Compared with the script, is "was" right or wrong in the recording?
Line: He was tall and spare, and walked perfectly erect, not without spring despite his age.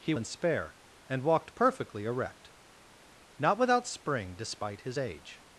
wrong